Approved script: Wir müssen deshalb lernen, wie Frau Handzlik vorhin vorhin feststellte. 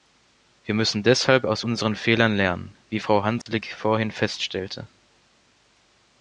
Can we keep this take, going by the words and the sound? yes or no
no